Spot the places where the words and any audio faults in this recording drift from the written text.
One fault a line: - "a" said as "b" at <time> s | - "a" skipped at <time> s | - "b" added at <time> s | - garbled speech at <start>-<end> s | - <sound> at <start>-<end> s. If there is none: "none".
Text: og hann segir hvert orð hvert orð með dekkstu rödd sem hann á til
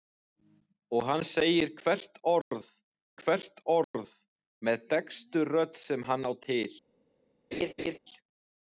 - laugh at 7.5-8.0 s